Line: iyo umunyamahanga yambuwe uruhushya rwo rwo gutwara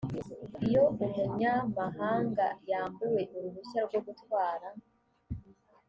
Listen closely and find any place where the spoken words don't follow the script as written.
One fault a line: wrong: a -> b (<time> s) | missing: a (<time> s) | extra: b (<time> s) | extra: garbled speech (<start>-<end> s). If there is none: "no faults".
missing: rwo (4.0 s)